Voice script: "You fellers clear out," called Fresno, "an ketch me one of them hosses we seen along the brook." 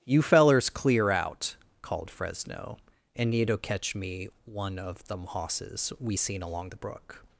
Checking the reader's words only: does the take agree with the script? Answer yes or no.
no